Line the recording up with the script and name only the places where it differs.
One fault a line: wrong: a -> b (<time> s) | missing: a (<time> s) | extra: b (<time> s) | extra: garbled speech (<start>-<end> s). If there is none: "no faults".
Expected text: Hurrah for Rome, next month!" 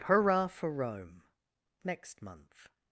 no faults